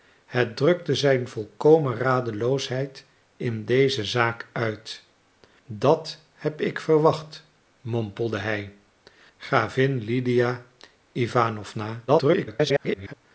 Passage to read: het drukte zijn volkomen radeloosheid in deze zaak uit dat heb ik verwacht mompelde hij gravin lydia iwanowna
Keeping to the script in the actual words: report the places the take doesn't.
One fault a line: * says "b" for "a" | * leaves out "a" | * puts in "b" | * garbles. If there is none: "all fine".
* garbles